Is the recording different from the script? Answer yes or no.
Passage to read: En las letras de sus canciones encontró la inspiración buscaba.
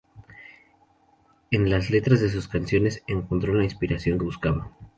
no